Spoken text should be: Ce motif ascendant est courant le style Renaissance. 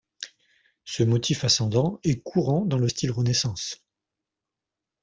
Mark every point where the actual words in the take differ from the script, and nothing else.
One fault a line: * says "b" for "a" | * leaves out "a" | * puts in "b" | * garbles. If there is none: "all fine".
* puts in "dans"